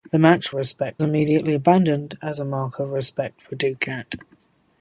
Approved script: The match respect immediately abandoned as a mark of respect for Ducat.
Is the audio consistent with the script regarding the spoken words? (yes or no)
yes